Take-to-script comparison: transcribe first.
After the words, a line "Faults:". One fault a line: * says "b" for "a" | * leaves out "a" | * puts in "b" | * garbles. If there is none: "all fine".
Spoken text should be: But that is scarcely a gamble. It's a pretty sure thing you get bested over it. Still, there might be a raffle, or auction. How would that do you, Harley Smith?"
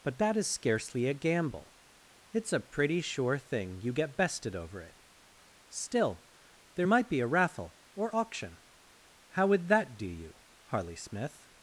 But that is scarcely a gamble. It's a pretty sure thing you get bested over it. Still, there might be a raffle, or auction. How would that do you, Harley Smith?"
Faults:
all fine